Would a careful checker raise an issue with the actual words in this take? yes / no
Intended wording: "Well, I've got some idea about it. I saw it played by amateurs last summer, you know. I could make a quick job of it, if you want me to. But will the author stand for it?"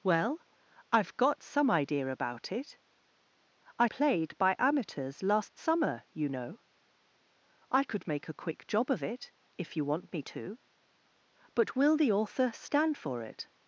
yes